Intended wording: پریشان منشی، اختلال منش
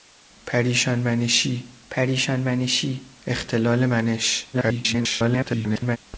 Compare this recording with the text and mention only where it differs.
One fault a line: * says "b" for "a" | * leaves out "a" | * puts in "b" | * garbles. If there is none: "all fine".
* puts in "پریشان منشی"
* garbles